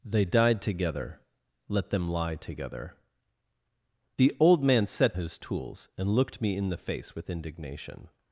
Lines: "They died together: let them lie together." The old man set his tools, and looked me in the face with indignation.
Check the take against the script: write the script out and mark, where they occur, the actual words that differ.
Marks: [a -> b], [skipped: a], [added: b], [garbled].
"They died together: let them lie together." The old man set his tools, and looked me in the face with indignation.